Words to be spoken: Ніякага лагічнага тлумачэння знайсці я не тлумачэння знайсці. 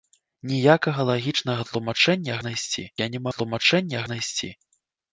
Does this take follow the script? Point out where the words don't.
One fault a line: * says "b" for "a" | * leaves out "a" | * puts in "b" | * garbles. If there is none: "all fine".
all fine